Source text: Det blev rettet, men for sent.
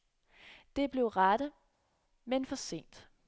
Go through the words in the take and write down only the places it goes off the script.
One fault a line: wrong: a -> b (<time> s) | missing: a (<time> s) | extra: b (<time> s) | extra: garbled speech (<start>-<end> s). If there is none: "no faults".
no faults